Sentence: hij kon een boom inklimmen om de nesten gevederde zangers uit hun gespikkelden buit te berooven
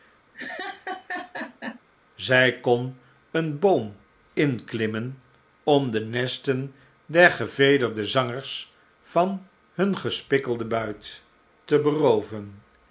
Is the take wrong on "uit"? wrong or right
wrong